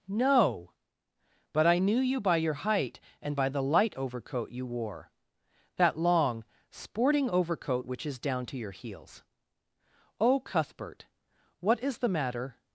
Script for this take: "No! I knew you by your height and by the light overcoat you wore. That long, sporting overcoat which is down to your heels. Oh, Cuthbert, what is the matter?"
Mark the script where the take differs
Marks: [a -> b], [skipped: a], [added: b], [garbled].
"No! [added: But] I knew you by your height and by the light overcoat you wore. That long, sporting overcoat which is down to your heels. Oh, Cuthbert, what is the matter?"